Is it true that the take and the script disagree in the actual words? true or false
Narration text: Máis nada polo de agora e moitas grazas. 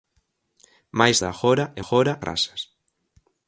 true